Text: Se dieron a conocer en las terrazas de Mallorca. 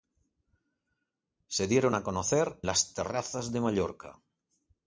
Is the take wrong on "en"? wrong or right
wrong